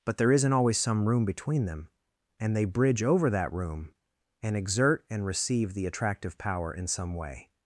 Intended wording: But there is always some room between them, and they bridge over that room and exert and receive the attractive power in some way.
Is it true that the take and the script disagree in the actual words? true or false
true